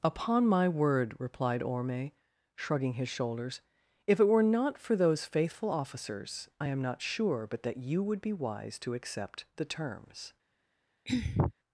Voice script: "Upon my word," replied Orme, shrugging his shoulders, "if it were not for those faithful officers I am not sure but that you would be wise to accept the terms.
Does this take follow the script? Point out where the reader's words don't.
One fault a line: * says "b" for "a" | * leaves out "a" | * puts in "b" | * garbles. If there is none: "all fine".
all fine